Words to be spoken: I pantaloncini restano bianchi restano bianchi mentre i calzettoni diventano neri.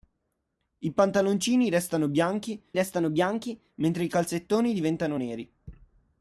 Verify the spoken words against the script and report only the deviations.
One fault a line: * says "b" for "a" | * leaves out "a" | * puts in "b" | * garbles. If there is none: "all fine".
all fine